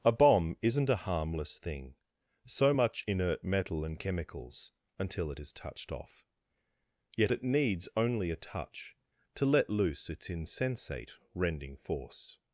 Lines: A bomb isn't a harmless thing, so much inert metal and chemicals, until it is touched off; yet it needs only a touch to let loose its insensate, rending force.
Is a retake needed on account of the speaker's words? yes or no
no